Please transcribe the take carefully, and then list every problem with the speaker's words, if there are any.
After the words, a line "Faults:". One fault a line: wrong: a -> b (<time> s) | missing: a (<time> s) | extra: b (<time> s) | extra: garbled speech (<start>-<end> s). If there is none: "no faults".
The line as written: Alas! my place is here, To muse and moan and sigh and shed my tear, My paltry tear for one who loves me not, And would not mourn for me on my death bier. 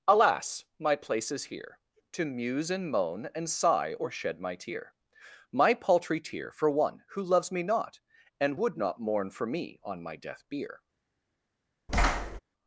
Alas! my place is here, To muse and moan and sigh or shed my tear, My paltry tear for one who loves me not, And would not mourn for me on my death bier.
Faults:
wrong: and -> or (3.9 s)